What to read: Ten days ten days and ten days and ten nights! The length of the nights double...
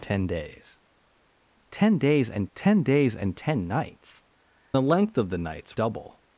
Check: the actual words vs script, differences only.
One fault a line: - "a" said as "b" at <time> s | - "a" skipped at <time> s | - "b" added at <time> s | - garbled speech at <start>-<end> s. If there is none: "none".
none